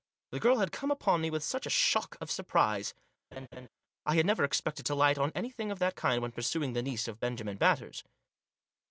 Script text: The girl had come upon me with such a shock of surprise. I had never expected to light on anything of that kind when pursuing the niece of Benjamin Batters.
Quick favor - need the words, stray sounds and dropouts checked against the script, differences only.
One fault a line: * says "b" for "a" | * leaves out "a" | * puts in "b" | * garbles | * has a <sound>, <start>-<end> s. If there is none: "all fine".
* has a laugh, 3.3-3.7 s